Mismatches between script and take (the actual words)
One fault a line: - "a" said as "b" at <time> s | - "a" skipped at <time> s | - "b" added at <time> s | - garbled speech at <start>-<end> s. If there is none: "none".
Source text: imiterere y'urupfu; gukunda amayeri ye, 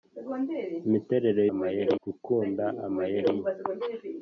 - "y'urupfu" said as "amayeri" at 1.5 s